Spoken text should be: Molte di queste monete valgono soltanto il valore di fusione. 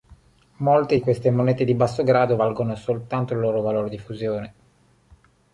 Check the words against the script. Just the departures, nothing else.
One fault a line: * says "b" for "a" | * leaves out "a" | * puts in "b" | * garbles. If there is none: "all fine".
* puts in "di basso grado"
* puts in "loro"